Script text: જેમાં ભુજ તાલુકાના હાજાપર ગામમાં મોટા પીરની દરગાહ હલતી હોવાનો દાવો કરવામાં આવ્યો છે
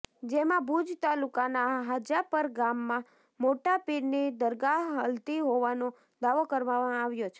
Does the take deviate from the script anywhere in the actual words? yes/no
no